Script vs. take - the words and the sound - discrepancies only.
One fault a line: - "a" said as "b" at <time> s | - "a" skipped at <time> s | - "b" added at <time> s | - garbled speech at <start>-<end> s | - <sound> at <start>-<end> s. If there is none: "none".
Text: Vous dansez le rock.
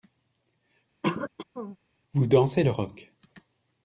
- throat clearing at 1.0-1.8 s